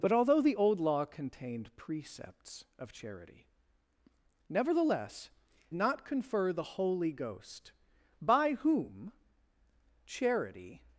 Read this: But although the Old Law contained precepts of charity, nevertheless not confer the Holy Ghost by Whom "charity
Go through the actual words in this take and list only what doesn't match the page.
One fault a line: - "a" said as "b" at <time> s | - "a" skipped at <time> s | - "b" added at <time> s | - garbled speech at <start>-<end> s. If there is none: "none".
none